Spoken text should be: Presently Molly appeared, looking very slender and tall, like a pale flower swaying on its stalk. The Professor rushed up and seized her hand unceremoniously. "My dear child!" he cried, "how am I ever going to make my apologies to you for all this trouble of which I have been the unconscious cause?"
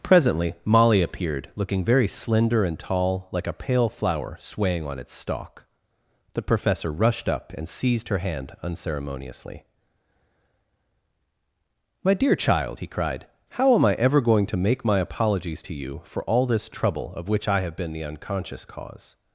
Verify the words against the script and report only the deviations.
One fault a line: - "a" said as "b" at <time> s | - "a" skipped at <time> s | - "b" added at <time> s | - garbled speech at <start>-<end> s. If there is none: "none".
none